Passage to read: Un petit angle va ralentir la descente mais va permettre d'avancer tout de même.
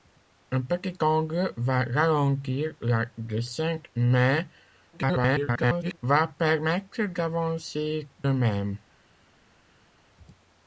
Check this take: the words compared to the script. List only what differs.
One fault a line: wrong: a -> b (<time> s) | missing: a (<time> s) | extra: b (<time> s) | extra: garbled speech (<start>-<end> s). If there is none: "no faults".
extra: garbled speech (4.9-6.0 s)
missing: tout de (8.1 s)